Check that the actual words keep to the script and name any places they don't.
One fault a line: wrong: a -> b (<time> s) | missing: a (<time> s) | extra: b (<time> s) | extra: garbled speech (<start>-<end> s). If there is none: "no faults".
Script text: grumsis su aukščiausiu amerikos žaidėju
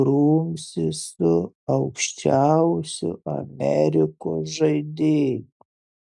no faults